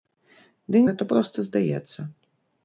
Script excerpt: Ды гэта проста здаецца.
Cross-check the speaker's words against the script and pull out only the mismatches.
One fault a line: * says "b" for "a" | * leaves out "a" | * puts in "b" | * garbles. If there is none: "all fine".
all fine